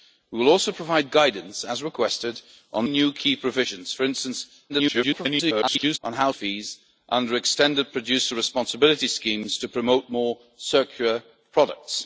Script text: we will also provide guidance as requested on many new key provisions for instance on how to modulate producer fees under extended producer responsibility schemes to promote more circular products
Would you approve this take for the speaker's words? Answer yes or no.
no